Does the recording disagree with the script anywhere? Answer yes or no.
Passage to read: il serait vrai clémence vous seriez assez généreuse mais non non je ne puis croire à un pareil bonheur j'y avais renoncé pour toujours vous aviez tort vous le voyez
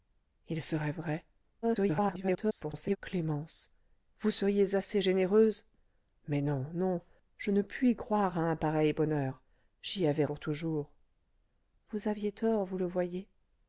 yes